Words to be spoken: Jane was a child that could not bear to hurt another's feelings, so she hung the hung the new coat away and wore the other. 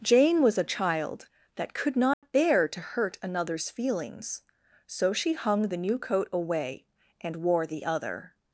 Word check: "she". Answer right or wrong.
right